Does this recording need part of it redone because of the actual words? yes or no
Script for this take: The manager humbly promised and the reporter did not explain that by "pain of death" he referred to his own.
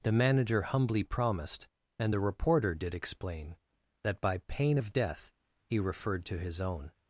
yes